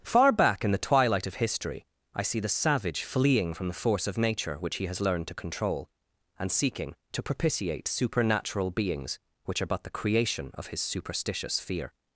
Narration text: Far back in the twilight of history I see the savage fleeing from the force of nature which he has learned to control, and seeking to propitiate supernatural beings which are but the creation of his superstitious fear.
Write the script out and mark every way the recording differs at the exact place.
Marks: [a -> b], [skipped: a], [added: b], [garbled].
Far back in the twilight of history I see the savage fleeing from the force of nature which he has learned to control, and seeking to propitiate supernatural beings which are but the creation of his superstitious fear.